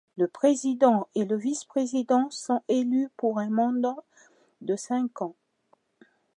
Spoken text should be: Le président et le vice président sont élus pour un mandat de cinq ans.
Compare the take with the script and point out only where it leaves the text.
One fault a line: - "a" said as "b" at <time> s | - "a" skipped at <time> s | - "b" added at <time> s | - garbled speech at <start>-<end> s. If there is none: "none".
none